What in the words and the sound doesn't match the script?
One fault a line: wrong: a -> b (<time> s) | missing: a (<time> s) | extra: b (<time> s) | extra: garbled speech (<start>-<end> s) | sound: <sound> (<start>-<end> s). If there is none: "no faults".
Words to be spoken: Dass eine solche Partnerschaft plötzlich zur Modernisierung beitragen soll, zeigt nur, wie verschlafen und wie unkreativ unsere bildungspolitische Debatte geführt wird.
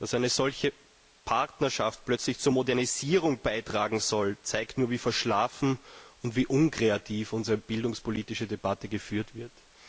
no faults